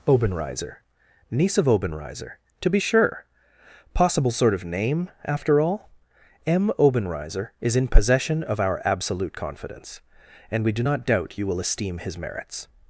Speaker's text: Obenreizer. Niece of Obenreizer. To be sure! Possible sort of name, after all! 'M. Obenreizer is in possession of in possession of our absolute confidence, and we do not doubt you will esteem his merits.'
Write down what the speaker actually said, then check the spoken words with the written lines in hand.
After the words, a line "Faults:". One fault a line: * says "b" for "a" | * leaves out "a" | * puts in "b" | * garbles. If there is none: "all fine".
Obenreizer. Niece of Obenreizer. To be sure! Possible sort of name, after all! 'M. Obenreizer is in possession of our absolute confidence, and we do not doubt you will esteem his merits.'
Faults:
* leaves out "in possession of"